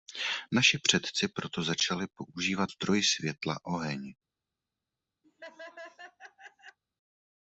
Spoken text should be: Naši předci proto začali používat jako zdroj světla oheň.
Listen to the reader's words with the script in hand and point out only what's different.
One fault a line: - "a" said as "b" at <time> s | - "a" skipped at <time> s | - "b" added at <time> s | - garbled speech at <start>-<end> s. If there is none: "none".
- "jako" skipped at 2.7 s